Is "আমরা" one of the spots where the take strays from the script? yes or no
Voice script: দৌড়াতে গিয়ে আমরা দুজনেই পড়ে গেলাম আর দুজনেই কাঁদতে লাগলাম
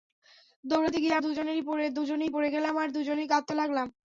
yes